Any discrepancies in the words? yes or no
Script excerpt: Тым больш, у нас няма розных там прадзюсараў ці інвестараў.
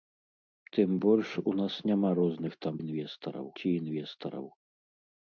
yes